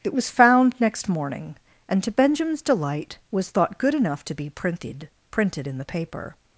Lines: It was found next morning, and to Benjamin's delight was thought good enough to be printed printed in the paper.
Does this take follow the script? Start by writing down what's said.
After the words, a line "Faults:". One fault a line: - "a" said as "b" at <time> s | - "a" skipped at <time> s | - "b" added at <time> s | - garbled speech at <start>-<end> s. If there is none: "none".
It was found next morning, and to Benjamin's delight was thought good enough to be printed printed in the paper.
Faults:
none